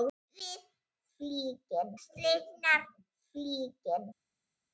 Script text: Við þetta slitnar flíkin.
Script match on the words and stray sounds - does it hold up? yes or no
no